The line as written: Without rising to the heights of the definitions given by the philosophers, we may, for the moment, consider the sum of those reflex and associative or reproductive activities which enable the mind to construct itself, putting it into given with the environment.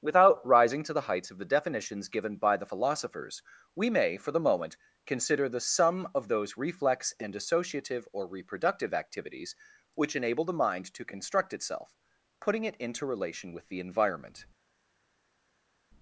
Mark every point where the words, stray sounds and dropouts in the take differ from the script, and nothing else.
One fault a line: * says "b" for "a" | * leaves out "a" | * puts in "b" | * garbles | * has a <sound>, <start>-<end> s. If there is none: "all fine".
* says "relation" for "given"